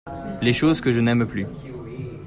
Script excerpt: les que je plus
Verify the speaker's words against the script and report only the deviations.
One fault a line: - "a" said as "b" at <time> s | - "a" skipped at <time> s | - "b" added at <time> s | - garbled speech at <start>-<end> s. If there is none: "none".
- "choses" added at 0.5 s
- "n'aime" added at 1.0 s